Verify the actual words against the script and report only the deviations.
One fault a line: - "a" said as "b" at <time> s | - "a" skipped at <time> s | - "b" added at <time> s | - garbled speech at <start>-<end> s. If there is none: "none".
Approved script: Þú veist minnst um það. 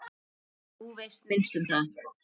none